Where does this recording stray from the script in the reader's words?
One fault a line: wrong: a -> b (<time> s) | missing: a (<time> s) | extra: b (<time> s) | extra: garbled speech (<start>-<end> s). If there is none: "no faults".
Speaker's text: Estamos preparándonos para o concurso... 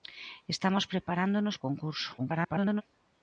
missing: para (1.6 s)
extra: garbled speech (2.2-2.8 s)